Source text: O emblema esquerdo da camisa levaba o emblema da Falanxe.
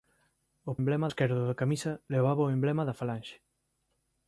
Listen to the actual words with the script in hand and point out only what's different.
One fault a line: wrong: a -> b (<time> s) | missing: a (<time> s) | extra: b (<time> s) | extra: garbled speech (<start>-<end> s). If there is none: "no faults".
no faults